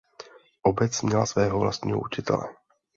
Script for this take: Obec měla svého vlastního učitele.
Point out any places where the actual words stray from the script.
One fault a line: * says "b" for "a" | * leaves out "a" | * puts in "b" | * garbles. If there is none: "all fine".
all fine